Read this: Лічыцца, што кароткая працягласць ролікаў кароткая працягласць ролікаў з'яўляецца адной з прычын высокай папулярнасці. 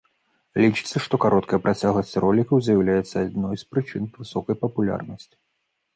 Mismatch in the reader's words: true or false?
true